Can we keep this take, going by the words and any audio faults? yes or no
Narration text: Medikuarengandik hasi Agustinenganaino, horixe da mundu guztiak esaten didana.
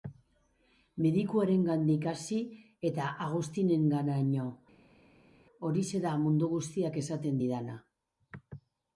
no